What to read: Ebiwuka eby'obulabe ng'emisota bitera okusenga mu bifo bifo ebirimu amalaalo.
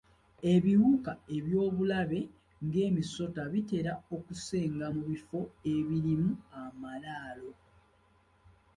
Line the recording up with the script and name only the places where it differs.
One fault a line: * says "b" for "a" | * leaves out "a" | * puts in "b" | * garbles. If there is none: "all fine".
* leaves out "bifo"